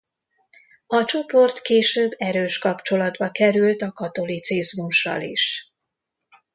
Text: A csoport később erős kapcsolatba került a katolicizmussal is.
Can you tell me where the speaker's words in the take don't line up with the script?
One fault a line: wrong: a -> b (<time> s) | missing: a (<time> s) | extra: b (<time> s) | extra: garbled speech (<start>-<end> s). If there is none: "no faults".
no faults